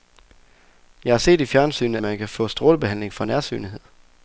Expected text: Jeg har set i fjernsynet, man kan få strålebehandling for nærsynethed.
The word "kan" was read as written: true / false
true